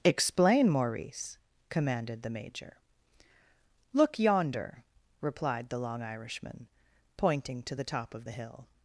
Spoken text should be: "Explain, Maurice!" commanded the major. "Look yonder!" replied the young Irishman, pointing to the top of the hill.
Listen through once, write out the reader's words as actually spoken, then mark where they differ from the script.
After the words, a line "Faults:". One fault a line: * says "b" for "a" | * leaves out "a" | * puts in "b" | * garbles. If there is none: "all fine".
"Explain, Maurice!" commanded the major. "Look yonder!" replied the long Irishman, pointing to the top of the hill.
Faults:
* says "long" for "young"